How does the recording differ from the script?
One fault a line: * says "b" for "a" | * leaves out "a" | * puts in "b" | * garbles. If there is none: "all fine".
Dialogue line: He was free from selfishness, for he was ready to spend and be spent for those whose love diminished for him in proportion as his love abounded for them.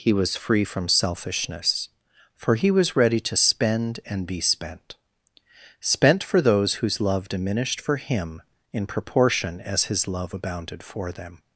* puts in "spent"